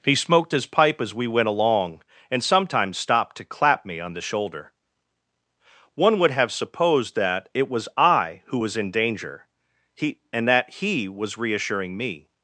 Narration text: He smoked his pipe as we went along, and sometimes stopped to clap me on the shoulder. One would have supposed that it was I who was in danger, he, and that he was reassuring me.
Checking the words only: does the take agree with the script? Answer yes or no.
yes